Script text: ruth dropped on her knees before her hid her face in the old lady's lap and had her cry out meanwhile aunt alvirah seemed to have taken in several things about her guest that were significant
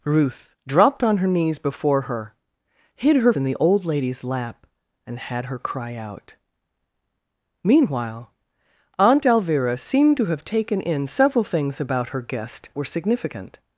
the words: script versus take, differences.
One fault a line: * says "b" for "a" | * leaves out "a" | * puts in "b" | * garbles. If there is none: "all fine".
* leaves out "face"
* leaves out "that"